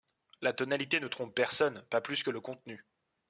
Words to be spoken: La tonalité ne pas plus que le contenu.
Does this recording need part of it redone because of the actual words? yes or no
yes